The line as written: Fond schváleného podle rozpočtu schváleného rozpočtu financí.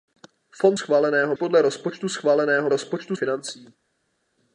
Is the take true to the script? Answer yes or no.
yes